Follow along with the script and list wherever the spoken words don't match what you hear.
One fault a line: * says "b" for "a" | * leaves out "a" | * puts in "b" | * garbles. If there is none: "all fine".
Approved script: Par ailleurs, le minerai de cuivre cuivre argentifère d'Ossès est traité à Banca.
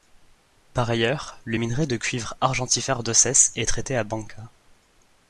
* leaves out "cuivre"